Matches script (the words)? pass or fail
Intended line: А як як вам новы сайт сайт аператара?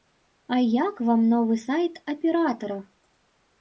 fail